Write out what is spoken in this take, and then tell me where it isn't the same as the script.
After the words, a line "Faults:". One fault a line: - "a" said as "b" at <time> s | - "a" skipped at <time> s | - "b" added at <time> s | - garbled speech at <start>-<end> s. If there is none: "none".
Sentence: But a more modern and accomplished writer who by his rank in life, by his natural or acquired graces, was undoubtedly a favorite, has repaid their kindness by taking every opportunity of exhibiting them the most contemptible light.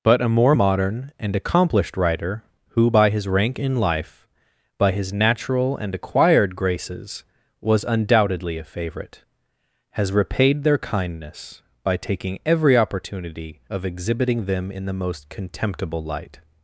But a more modern and accomplished writer who by his rank in life, by his natural and acquired graces, was undoubtedly a favorite, has repaid their kindness by taking every opportunity of exhibiting them in the most contemptible light.
Faults:
- "or" said as "and" at 5.8 s
- "in" added at 14.7 s